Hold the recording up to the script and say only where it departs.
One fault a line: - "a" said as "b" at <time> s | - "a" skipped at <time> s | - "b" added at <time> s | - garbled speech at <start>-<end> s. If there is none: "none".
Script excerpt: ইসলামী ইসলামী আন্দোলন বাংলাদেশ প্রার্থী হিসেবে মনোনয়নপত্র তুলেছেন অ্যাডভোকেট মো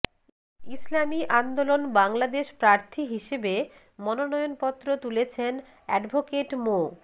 - "ইসলামী" skipped at 1.2 s